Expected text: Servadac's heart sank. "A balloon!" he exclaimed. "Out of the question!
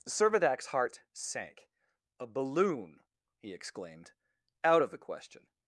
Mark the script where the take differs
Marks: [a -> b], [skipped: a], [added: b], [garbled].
Servadac's heart sank. "A balloon!" he exclaimed. "Out of the question!